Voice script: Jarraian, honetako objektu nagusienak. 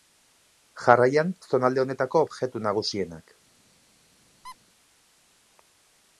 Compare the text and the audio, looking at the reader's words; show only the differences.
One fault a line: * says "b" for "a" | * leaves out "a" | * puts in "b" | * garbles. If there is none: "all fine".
* puts in "zonalde"